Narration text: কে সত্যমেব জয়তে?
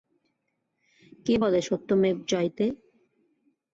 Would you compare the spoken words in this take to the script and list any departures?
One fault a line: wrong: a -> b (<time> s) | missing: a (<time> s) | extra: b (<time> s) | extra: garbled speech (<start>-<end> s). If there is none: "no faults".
extra: বলে (1.4 s)